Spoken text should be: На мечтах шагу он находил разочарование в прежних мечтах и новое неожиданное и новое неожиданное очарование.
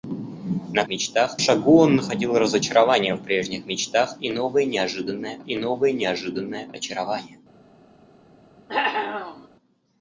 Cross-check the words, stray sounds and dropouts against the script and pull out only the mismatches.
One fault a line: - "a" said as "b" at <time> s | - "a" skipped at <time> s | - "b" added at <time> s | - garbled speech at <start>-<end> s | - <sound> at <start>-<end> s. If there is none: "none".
- cough at 8.7-9.5 s